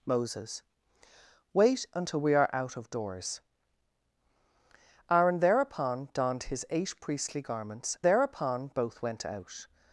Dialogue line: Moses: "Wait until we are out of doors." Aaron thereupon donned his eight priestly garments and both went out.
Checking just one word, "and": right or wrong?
wrong